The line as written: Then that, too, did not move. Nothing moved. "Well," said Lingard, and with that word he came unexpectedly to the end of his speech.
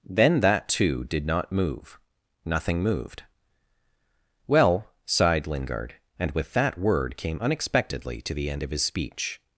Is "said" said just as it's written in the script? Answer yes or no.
no